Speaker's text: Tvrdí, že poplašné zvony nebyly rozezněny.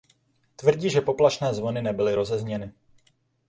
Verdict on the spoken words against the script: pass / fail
pass